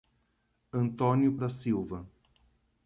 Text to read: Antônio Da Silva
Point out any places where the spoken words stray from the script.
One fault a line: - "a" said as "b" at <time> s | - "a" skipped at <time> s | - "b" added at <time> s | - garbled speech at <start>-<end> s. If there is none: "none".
none